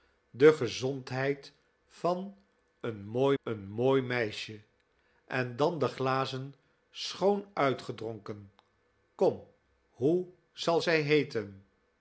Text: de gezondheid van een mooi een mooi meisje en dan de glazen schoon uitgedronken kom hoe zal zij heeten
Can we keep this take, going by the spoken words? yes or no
yes